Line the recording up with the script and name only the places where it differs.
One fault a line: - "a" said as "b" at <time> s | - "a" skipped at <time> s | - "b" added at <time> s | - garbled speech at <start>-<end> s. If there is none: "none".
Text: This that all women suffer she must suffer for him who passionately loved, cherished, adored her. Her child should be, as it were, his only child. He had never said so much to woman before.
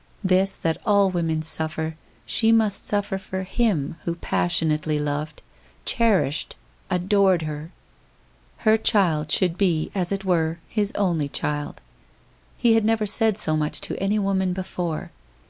- "any" added at 14.0 s